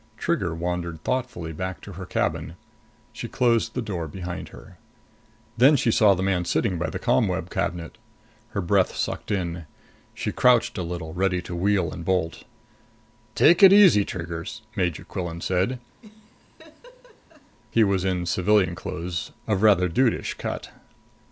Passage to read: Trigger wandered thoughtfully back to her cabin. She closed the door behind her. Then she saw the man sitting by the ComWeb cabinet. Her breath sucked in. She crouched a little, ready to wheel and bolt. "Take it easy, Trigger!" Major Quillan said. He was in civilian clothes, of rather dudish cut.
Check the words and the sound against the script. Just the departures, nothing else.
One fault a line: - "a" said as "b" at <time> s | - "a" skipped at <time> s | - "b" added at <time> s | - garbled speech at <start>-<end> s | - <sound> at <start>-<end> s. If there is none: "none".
- laugh at 16.0-17.6 s